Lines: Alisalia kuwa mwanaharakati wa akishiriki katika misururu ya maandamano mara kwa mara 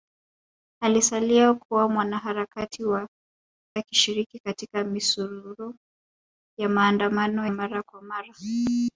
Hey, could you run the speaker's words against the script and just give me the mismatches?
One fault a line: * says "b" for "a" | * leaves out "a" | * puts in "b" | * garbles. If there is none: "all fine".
all fine